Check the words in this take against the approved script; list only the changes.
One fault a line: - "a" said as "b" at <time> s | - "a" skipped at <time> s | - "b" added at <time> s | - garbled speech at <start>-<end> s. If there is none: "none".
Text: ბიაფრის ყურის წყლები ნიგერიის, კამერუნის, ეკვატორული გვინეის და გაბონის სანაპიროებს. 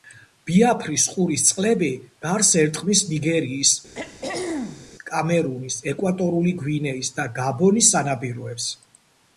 - "გარს ერტყმის" added at 2.2 s